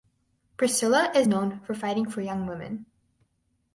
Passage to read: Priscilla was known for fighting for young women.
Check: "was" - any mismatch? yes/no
yes